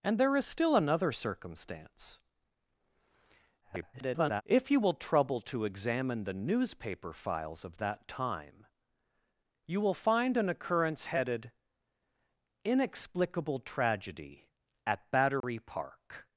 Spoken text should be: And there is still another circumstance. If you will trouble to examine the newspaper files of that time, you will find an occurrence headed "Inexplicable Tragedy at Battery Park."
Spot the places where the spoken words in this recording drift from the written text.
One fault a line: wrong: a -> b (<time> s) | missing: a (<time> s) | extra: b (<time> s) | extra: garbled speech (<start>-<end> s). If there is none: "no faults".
extra: garbled speech (3.6-4.4 s)